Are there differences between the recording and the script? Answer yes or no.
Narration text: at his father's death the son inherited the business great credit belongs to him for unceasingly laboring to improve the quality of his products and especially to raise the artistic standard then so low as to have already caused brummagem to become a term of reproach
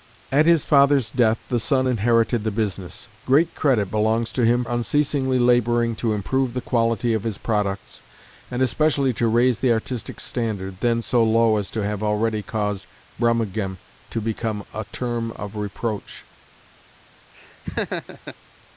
yes